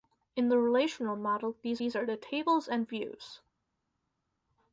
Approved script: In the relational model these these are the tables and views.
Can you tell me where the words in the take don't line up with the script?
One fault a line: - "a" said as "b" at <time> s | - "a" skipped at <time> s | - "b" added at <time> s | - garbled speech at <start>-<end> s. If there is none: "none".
none